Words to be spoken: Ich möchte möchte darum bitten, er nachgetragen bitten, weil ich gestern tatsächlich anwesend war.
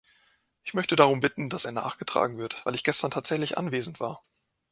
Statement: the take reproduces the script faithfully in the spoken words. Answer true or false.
false